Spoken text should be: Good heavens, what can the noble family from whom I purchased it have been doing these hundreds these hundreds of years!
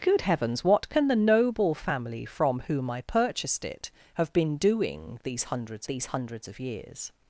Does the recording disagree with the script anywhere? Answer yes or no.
no